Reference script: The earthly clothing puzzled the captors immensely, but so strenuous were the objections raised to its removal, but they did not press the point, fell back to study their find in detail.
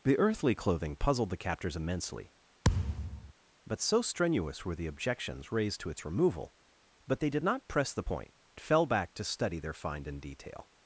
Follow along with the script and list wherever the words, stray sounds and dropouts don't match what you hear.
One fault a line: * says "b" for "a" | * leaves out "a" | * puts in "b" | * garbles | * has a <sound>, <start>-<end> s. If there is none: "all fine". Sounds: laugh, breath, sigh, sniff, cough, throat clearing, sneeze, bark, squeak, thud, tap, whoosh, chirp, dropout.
* has a thud, 2.6-3.3 s